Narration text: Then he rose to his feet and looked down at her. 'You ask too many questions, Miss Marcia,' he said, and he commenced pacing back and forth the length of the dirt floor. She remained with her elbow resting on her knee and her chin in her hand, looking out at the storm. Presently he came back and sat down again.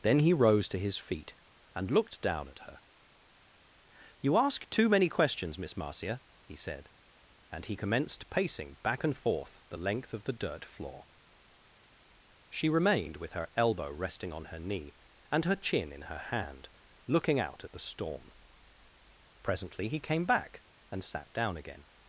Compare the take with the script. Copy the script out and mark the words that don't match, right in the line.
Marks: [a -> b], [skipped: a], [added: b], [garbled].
Then he rose to his feet and looked down at her. 'You ask too many questions, Miss Marcia,' he said, and he commenced pacing back and forth the length of the dirt floor. She remained with her elbow resting on her knee and her chin in her hand, looking out at the storm. Presently he came back and sat down again.